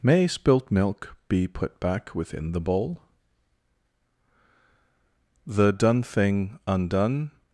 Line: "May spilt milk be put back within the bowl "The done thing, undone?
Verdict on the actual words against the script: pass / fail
pass